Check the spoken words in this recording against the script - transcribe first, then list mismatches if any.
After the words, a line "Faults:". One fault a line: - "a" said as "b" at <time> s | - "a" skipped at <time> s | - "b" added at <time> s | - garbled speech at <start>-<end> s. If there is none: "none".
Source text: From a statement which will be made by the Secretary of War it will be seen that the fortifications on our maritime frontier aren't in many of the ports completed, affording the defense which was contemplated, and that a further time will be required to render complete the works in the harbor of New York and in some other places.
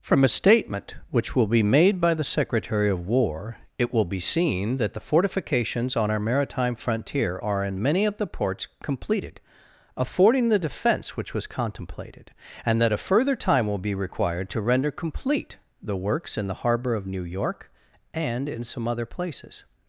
From a statement which will be made by the Secretary of War it will be seen that the fortifications on our maritime frontier are in many of the ports completed, affording the defense which was contemplated, and that a further time will be required to render complete the works in the harbor of New York and in some other places.
Faults:
- "aren't" said as "are" at 7.4 s